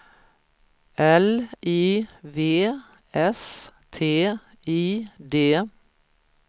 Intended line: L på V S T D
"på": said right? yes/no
no